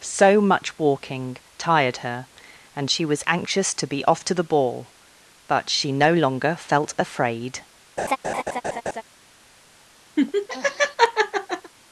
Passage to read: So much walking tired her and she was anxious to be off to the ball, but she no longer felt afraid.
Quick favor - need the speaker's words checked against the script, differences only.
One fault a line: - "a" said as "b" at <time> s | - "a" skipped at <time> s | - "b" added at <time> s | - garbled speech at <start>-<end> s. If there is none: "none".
none